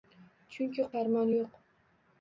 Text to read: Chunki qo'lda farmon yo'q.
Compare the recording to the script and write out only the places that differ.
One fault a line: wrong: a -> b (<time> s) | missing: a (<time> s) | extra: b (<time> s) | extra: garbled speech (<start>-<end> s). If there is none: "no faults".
missing: qo'lda (0.8 s)